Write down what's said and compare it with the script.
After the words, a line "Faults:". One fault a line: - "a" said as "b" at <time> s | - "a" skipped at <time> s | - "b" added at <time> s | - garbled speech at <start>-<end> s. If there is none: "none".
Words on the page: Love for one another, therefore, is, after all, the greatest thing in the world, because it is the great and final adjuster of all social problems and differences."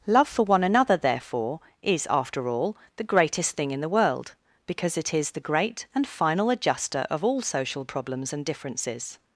Love for one another, therefore, is, after all, the greatest thing in the world, because it is the great and final adjuster of all social problems and differences."
Faults:
none